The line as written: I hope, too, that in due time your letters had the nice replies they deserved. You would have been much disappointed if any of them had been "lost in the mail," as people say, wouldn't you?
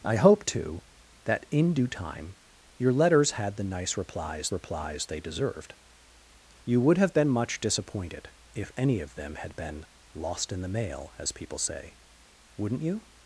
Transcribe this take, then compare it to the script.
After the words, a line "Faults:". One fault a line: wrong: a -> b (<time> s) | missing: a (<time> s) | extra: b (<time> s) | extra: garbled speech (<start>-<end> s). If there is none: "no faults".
I hope, too, that in due time your letters had the nice replies replies they deserved. You would have been much disappointed if any of them had been "lost in the mail," as people say, wouldn't you?
Faults:
extra: replies (4.5 s)